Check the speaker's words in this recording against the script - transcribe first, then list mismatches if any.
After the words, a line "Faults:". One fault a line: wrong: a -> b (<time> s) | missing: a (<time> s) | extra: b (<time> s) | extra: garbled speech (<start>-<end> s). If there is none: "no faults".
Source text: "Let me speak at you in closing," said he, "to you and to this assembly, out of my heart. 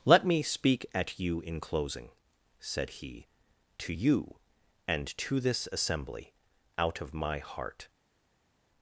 "Let me speak at you in closing," said he, "to you and to this assembly, out of my heart.
Faults:
no faults